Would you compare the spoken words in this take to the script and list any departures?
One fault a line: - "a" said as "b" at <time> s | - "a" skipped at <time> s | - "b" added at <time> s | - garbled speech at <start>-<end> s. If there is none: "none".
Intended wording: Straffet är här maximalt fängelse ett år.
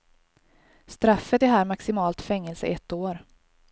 none